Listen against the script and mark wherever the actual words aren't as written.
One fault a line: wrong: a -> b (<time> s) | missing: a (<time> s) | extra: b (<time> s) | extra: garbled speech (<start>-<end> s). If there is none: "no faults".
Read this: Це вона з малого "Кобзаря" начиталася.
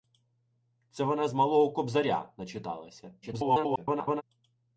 extra: garbled speech (3.2-4.2 s)